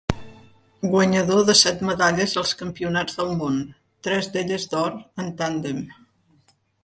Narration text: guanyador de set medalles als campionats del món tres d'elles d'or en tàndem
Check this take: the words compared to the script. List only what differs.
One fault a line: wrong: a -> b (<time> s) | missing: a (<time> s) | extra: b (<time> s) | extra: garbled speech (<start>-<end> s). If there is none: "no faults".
no faults